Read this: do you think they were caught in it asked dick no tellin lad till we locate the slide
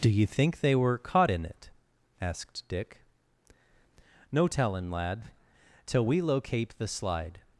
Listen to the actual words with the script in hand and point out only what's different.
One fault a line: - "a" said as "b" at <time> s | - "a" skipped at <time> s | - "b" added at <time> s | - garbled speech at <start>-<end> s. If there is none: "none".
none